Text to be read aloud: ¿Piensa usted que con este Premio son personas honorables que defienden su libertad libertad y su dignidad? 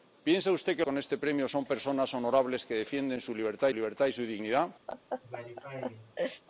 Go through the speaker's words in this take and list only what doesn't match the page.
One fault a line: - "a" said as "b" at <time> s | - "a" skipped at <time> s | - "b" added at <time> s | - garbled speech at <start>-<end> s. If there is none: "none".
none